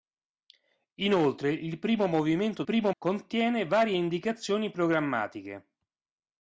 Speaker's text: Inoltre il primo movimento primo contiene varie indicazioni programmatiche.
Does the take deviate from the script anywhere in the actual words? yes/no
no